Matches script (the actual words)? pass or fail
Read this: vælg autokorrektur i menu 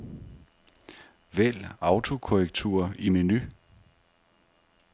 pass